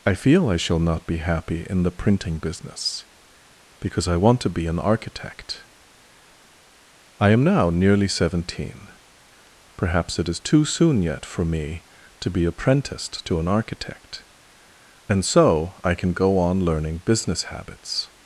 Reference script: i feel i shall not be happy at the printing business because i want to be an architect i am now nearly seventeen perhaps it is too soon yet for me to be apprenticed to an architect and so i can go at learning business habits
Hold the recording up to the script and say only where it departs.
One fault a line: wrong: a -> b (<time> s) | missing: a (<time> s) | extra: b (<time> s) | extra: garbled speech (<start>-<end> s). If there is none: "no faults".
wrong: at -> in (1.7 s)
wrong: at -> on (16.4 s)